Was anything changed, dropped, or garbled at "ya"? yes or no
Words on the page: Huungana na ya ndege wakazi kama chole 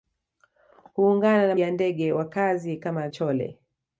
no